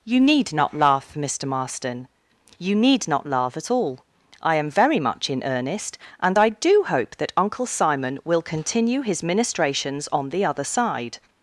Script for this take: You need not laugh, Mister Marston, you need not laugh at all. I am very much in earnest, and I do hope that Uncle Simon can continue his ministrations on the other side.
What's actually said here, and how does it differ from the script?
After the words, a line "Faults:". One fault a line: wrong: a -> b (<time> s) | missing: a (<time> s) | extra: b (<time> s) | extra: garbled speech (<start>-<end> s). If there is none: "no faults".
You need not laugh, Mister Marston, you need not laugh at all. I am very much in earnest, and I do hope that Uncle Simon will continue his ministrations on the other side.
Faults:
wrong: can -> will (8.2 s)